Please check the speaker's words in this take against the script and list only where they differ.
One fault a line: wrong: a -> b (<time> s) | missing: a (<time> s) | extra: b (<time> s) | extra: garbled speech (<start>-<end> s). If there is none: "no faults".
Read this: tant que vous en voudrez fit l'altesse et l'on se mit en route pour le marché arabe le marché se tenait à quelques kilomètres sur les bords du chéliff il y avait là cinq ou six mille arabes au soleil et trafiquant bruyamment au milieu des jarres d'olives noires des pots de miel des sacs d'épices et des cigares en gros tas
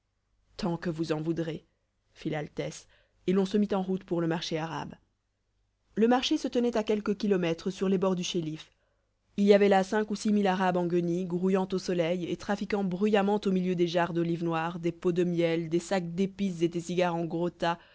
extra: en guenilles grouillant (10.8 s)